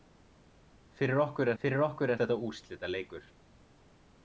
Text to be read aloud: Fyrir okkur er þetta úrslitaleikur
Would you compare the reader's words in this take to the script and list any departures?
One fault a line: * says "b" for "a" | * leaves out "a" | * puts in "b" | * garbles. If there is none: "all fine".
* puts in "fyrir okkur"